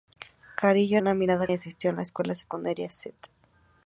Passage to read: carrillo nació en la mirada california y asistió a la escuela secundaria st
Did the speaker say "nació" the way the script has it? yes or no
no